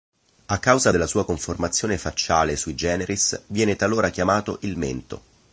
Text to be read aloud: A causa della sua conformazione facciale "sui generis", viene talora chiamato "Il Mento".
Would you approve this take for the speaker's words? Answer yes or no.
yes